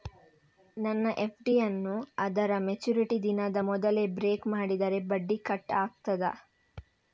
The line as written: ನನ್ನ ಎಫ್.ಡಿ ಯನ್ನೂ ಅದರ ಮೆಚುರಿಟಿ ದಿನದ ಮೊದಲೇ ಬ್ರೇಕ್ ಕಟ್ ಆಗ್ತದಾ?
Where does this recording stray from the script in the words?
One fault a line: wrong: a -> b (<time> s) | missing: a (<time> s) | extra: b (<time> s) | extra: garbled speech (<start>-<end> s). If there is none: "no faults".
extra: ಮಾಡಿದರೆ ಬಡ್ಡಿ (4.5 s)